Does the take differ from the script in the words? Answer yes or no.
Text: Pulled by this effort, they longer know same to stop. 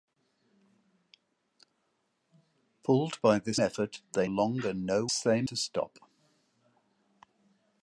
no